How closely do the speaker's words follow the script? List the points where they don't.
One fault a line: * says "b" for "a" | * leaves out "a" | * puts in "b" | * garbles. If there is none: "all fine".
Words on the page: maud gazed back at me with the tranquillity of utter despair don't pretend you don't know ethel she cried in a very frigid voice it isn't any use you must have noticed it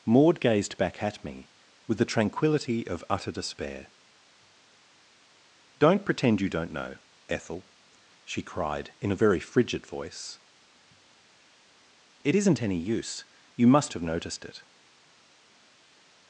all fine